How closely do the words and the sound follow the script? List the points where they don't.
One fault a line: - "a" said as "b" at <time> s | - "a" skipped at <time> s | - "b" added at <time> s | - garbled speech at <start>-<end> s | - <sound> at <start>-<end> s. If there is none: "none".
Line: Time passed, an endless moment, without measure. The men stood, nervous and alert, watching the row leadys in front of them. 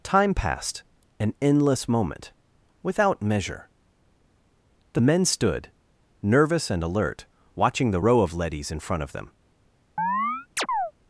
- "of" added at 8.2 s
- chirp at 10.0-10.9 s